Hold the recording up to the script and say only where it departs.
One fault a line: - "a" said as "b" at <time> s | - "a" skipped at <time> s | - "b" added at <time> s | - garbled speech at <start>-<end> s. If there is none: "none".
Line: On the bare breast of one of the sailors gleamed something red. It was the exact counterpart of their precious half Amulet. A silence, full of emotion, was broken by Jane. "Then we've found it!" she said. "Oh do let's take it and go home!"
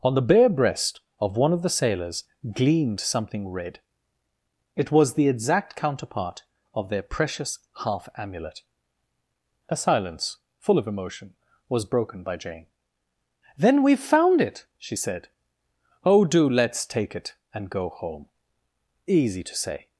- "Easy to say" added at 19.1 s